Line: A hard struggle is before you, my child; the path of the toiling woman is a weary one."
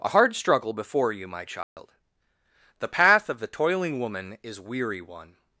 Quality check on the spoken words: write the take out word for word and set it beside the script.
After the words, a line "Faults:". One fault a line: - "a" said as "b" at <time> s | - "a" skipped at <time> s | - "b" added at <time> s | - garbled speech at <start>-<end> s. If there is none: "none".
A hard struggle before you, my child; the path of the toiling woman is weary one."
Faults:
- "is" skipped at 0.7 s
- "a" skipped at 4.6 s